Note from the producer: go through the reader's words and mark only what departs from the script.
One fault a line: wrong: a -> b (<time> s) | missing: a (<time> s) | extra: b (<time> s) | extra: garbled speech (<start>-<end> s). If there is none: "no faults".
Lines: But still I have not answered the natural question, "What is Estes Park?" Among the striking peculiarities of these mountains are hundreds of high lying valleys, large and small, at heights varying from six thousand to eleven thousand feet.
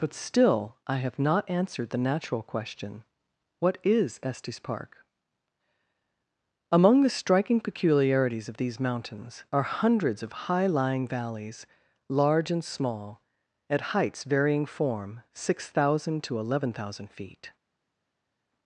wrong: from -> form (14.7 s)